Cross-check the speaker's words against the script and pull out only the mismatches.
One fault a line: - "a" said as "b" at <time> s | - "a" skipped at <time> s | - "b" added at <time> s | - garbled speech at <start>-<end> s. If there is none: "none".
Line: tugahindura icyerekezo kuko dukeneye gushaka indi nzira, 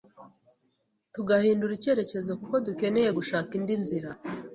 none